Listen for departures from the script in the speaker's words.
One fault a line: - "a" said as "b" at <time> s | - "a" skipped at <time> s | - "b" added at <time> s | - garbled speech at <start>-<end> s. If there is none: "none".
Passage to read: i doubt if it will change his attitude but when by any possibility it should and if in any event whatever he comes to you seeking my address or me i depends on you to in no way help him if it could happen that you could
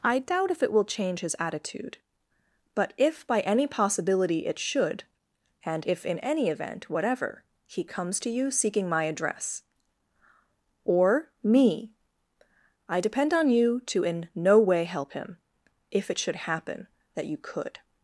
- "when" said as "if" at 3.0 s
- "depends" said as "depend" at 13.0 s
- "could" said as "should" at 16.2 s